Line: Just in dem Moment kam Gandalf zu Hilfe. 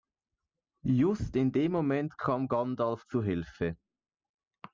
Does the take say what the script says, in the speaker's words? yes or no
yes